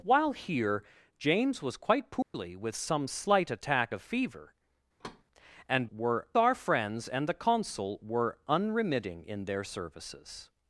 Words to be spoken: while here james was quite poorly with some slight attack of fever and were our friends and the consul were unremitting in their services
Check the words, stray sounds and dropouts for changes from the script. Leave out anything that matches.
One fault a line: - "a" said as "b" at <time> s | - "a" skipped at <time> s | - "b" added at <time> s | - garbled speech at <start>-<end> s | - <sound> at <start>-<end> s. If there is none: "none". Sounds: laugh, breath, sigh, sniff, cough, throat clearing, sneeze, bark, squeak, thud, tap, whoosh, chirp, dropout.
- dropout at 2.2-2.3 s
- thud at 5.0-5.2 s